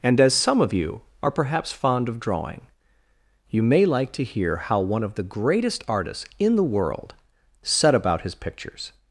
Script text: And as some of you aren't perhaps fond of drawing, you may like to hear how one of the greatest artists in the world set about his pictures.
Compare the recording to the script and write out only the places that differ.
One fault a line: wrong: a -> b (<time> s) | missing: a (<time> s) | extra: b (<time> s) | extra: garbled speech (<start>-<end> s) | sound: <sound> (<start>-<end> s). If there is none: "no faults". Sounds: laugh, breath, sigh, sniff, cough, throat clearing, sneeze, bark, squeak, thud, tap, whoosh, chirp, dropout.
wrong: aren't -> are (1.2 s)